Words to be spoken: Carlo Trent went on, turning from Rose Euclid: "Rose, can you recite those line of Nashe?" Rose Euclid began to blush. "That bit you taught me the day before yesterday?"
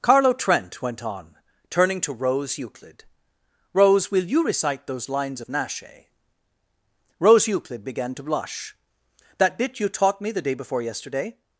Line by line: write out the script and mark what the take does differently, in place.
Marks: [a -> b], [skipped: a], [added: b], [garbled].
Carlo Trent went on, turning [from -> to] Rose Euclid: "Rose, [can -> will] you recite those [line -> lines] of Nashe?" Rose Euclid began to blush. "That bit you taught me the day before yesterday?"